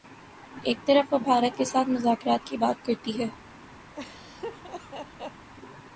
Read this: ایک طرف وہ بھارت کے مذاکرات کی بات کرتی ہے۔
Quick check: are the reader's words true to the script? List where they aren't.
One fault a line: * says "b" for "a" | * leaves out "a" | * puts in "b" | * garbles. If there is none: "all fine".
* puts in "ساتھ"